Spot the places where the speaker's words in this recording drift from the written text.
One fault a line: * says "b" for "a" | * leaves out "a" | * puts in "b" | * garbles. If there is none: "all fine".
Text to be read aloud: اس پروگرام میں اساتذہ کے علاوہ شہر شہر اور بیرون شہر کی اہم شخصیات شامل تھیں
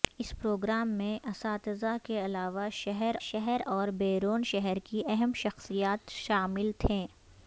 all fine